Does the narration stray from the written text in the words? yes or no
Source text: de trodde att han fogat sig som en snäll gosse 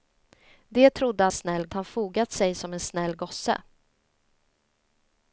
yes